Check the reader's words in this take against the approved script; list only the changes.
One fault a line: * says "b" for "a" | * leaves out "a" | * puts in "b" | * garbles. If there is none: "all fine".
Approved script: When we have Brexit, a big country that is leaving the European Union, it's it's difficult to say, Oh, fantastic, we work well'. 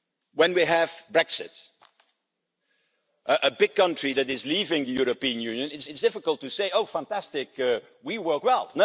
all fine